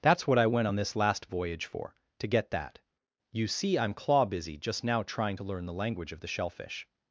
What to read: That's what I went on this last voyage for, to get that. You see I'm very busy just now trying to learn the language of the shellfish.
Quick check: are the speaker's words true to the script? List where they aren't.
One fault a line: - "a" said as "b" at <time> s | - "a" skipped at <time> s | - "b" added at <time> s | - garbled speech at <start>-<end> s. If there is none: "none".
- "very" said as "claw" at 3.9 s